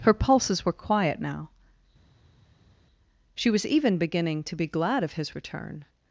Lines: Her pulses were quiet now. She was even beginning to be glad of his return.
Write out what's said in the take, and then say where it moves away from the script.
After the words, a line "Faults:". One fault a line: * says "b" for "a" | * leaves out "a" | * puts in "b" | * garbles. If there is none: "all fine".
Her pulses were quiet now. She was even beginning to be glad of his return.
Faults:
all fine